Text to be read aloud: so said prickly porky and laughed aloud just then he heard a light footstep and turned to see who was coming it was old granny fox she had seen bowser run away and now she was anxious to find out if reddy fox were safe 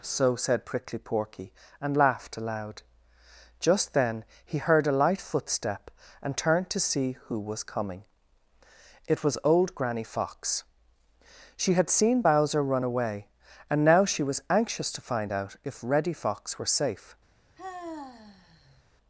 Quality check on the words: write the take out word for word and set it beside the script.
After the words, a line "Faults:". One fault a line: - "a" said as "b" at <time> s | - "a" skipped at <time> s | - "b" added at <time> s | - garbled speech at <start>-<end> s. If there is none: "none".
so said prickly porky and laughed aloud just then he heard a light footstep and turned to see who was coming it was old granny fox she had seen bowser run away and now she was anxious to find out if reddy fox were safe
Faults:
none